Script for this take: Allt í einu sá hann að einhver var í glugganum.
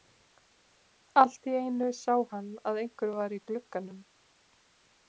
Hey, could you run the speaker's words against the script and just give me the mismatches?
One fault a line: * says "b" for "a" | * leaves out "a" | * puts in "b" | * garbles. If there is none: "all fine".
all fine